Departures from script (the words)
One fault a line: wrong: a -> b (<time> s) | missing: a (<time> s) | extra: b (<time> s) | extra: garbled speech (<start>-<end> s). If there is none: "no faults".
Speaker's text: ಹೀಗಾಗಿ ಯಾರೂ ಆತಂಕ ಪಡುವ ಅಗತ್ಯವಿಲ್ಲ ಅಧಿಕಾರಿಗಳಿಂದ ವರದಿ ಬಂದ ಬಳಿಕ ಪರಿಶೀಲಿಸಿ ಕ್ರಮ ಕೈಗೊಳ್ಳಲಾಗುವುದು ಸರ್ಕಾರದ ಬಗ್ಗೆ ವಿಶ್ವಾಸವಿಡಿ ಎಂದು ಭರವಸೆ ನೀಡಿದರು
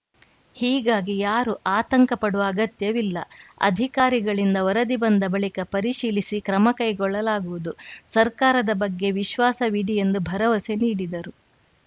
no faults